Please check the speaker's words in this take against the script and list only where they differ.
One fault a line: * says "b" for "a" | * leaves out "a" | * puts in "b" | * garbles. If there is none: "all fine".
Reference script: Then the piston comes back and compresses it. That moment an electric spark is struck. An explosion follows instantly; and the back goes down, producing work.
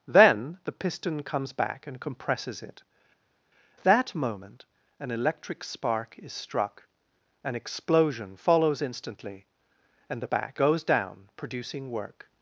all fine